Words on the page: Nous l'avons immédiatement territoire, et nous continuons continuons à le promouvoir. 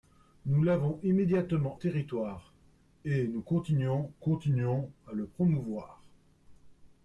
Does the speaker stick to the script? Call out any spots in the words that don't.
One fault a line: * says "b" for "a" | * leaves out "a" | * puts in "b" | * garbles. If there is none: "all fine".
all fine